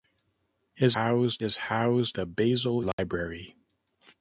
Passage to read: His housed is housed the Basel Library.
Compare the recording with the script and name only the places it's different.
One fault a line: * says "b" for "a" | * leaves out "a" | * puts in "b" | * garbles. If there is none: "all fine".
all fine